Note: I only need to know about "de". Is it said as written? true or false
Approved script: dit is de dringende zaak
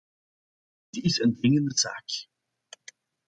false